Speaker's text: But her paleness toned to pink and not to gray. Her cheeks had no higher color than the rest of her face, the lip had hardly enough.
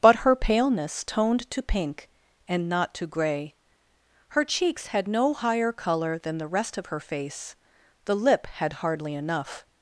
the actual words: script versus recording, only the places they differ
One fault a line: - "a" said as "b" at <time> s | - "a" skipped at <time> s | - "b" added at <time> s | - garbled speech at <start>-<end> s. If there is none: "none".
none